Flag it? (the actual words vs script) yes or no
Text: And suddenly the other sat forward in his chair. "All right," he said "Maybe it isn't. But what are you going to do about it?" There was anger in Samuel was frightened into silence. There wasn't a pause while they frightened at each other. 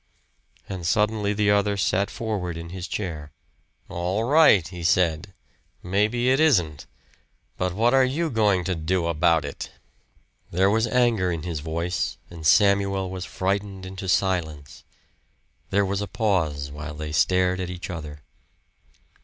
yes